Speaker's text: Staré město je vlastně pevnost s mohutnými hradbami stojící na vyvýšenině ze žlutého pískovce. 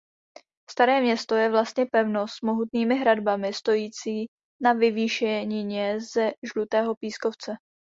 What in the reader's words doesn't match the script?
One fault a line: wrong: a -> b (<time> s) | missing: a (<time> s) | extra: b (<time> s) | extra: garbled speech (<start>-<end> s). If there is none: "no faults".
no faults